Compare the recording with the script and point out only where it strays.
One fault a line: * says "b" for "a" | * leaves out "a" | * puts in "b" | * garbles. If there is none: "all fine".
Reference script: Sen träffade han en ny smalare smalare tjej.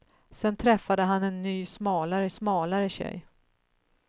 all fine